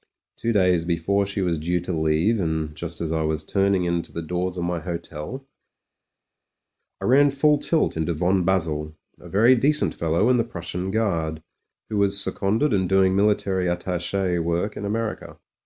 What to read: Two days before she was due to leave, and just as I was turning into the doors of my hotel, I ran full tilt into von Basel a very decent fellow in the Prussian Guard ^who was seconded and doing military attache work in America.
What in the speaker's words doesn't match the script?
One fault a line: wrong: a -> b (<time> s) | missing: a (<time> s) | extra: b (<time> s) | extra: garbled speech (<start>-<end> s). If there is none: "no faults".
no faults